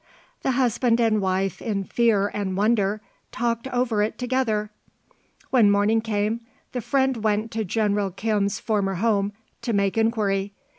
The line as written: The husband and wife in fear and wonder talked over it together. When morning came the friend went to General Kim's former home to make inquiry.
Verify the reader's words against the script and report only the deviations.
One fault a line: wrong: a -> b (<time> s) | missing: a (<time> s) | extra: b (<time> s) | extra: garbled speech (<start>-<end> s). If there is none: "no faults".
no faults